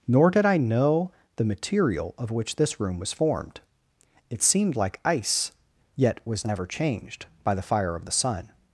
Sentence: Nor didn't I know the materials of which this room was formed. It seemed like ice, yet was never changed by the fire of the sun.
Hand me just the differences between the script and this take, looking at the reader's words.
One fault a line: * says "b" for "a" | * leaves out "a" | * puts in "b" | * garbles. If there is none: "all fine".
* says "did" for "didn't"
* says "material" for "materials"